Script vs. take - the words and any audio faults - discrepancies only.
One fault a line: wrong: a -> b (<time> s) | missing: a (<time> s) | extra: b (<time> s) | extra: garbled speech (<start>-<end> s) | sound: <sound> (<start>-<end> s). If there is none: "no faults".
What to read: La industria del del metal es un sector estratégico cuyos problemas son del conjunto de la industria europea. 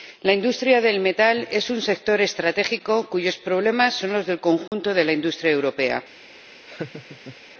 missing: del (1.0 s)
extra: los (4.1 s)
sound: dropout (4.7-4.7 s)
sound: laugh (6.7-7.4 s)